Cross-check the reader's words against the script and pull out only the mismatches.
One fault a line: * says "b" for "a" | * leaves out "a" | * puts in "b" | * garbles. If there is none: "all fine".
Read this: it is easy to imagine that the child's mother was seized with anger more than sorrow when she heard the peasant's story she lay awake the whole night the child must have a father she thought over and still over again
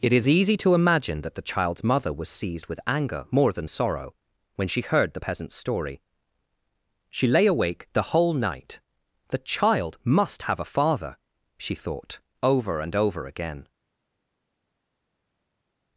* leaves out "still"